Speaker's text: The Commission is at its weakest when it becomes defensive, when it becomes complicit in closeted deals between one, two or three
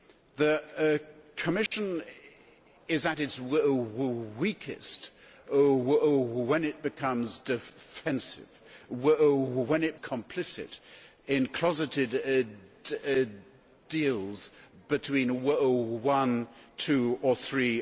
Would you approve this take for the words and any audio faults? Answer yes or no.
no